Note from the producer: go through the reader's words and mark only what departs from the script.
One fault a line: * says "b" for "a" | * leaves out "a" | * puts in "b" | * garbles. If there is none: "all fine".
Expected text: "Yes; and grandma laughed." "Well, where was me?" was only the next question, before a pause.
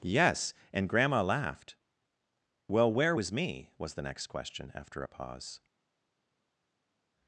* leaves out "only"
* says "after" for "before"